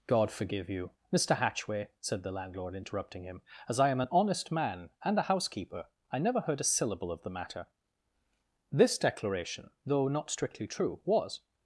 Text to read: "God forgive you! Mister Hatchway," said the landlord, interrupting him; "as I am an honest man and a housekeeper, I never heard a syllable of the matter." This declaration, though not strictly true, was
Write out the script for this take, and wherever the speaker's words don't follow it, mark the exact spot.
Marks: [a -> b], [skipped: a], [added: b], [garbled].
"God forgive you! Mister Hatchway," said the landlord, interrupting him; "as I am an honest man and a housekeeper, I never heard a syllable of the matter." This declaration, though not strictly true, was